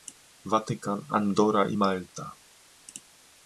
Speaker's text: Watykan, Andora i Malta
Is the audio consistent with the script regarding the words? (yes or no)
yes